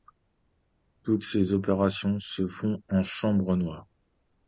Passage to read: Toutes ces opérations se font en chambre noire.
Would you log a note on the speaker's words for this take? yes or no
no